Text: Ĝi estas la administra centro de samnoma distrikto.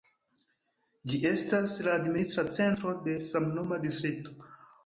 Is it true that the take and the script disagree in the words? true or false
false